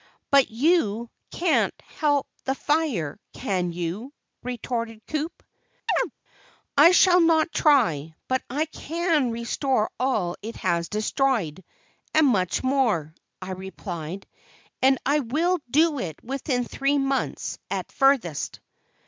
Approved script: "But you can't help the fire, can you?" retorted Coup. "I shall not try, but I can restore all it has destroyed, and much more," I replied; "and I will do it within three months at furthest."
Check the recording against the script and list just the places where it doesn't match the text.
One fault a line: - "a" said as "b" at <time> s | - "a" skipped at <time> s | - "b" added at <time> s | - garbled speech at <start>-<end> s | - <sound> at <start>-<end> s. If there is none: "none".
- chirp at 5.9-6.1 s